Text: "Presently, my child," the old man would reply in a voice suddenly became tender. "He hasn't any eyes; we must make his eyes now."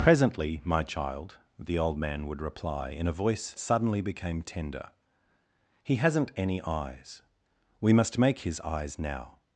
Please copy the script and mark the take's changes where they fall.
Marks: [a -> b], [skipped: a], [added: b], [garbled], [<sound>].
"Presently, my child," the old man would reply in a voice suddenly became tender. "He hasn't any eyes; we must make his eyes now."